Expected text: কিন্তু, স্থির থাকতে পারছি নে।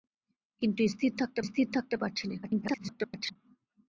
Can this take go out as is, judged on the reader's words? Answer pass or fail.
fail